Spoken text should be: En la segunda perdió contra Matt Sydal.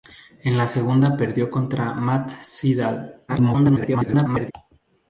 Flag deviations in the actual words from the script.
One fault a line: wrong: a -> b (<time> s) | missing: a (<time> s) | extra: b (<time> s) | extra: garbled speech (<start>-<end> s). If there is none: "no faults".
extra: garbled speech (3.3-4.5 s)